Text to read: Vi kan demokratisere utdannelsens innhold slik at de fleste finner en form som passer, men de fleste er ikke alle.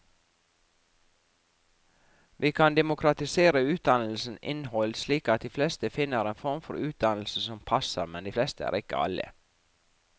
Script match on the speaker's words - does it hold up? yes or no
no